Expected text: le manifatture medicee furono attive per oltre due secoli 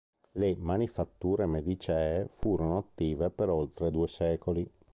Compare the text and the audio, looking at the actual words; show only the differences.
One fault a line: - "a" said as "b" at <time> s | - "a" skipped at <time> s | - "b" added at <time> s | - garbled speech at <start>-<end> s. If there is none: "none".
none